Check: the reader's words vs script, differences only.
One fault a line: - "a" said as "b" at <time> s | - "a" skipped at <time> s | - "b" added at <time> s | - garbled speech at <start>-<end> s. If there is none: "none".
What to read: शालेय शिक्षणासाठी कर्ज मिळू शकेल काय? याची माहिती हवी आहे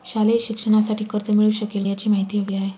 - "काय" skipped at 1.8 s